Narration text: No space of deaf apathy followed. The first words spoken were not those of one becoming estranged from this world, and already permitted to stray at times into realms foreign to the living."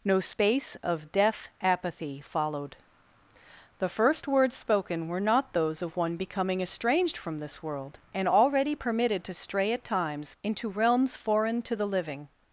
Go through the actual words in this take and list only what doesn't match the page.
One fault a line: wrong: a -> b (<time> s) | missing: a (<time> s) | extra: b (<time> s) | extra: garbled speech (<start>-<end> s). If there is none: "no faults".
no faults